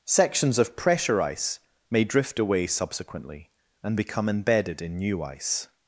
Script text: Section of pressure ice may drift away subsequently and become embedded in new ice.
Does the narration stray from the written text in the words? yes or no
yes